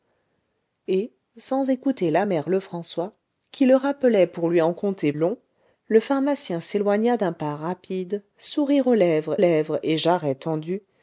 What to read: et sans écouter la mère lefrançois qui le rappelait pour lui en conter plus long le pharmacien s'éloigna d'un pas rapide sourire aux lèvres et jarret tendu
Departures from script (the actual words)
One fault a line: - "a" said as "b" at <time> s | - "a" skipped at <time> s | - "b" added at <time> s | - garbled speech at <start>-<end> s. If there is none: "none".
- "plus" skipped at 5.1 s
- "lèvres" added at 9.4 s